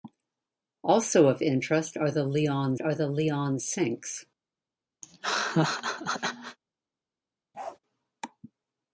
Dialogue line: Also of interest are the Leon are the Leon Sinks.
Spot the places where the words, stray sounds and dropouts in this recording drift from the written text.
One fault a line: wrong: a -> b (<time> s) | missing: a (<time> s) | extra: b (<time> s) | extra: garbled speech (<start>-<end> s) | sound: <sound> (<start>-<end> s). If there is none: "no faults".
sound: laugh (5.0-6.6 s)
sound: bark (7.5-7.8 s)